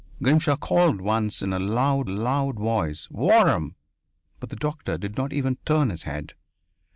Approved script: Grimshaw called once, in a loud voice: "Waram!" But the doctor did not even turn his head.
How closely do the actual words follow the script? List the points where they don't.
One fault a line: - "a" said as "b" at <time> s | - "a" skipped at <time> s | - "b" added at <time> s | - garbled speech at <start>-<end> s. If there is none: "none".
- "loud" added at 2.1 s